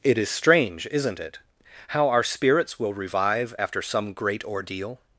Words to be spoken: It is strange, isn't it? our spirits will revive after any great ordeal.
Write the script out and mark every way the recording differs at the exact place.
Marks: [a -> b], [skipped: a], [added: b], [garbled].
It is strange, isn't it? [added: how] our spirits will revive after [any -> some] great ordeal.